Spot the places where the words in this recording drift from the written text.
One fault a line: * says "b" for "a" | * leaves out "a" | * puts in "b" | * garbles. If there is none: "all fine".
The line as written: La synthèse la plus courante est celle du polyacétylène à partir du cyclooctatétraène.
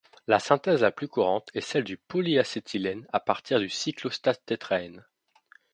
all fine